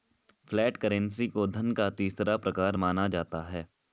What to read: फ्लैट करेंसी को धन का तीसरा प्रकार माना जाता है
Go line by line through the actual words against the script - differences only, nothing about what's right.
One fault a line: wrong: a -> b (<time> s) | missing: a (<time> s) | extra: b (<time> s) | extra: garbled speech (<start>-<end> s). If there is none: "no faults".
no faults